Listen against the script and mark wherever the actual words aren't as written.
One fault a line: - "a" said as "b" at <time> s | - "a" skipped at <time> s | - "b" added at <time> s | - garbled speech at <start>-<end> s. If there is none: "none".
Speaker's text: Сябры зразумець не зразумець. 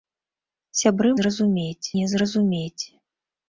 none